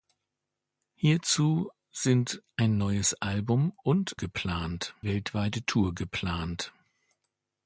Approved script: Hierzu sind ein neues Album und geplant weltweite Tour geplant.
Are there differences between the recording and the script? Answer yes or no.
no